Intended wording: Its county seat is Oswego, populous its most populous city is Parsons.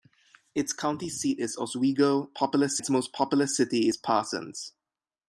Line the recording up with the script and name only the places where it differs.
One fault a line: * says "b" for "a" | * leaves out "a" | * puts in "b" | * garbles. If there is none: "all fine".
all fine